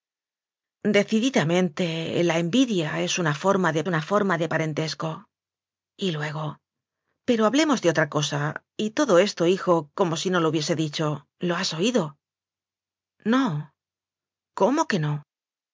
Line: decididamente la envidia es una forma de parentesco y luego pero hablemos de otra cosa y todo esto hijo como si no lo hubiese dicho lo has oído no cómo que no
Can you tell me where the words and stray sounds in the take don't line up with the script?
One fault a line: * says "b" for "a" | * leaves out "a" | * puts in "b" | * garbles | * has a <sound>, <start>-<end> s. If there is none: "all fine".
* puts in "una forma de"